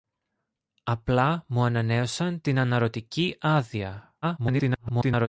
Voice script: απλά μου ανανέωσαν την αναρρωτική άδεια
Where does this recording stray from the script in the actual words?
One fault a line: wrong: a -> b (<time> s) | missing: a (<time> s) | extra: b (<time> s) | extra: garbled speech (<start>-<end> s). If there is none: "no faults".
extra: garbled speech (4.2-5.3 s)